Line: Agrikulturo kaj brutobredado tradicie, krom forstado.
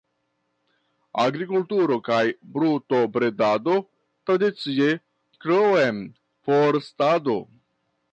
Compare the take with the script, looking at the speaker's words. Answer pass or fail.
pass